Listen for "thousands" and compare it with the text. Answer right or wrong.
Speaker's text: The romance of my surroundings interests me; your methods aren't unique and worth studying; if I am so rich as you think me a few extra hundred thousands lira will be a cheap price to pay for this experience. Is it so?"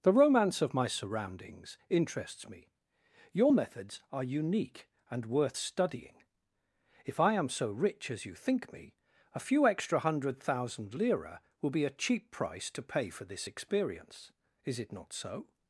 wrong